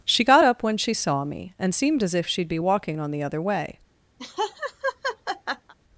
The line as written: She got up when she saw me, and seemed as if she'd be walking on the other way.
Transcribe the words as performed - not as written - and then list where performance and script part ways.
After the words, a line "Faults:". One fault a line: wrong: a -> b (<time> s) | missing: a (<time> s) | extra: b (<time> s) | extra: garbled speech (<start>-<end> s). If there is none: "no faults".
She got up when she saw me, and seemed as if she'd be walking on the other way.
Faults:
no faults